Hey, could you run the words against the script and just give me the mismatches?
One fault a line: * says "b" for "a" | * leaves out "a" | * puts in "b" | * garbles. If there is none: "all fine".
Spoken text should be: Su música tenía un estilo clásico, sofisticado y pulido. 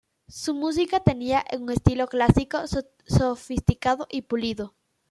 all fine